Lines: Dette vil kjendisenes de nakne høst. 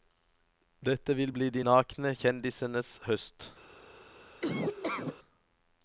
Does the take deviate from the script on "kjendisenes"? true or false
true